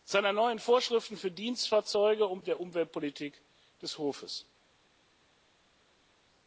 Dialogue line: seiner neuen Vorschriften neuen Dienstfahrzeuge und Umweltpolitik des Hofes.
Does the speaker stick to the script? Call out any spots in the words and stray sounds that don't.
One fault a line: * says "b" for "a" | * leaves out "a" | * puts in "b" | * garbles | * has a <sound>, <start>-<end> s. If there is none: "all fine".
* says "für" for "neuen"
* puts in "der"